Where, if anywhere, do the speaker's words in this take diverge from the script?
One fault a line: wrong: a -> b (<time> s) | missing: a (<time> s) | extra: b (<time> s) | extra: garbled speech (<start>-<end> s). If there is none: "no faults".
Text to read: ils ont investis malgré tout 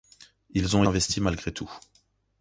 no faults